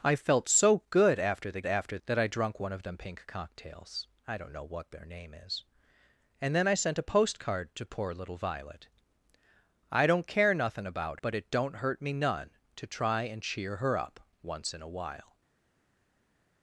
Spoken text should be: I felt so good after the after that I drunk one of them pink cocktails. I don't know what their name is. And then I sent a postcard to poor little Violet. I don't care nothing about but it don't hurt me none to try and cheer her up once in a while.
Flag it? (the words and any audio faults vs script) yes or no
no